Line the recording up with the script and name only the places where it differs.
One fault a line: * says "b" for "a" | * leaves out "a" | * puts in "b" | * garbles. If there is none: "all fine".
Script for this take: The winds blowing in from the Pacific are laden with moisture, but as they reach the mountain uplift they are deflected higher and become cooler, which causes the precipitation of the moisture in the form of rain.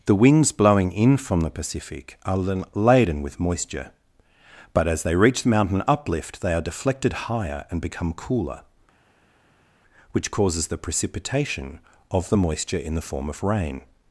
all fine